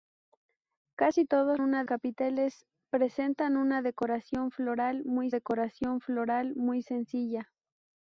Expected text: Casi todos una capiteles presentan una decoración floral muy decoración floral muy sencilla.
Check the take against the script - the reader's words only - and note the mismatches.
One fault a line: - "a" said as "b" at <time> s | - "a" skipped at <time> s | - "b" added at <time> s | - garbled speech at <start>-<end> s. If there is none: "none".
none